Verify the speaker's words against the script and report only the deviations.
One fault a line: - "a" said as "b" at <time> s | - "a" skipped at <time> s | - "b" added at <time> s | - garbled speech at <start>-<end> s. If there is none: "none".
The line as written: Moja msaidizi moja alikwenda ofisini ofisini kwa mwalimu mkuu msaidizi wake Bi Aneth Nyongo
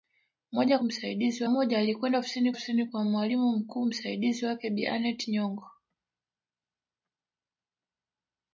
none